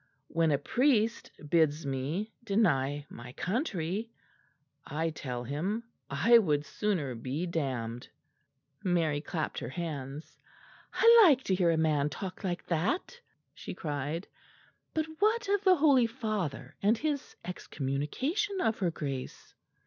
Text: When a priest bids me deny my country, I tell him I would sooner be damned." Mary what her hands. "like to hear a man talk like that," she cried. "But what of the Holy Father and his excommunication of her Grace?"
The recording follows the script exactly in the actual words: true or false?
false